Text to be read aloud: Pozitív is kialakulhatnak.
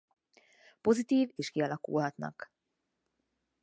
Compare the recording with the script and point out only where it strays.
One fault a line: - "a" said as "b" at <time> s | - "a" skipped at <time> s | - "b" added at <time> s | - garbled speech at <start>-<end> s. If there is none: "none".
none